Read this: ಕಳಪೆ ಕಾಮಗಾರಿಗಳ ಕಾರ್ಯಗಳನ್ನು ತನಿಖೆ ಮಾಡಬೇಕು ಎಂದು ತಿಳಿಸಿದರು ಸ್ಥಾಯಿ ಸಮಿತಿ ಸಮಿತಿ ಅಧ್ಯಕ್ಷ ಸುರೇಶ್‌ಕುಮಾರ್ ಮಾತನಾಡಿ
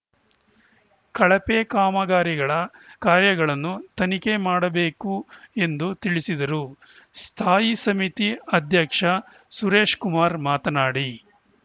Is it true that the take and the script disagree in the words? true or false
true